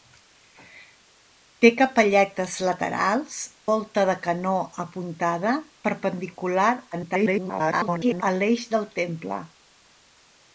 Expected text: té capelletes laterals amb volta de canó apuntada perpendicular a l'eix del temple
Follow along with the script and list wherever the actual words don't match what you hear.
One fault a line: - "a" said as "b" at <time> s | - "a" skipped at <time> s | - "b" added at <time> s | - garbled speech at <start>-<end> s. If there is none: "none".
- "amb" skipped at 3.4 s
- garbled speech at 6.9-8.2 s